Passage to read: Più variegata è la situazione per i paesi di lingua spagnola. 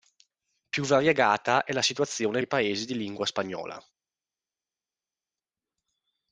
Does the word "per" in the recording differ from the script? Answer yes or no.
yes